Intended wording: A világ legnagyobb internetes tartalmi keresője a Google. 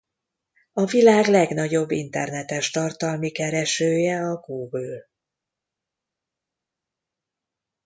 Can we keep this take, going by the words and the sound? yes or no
yes